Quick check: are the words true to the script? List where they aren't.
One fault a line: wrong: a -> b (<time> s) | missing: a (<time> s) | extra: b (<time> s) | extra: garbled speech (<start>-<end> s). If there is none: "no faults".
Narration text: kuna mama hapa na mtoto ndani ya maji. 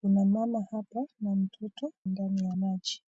no faults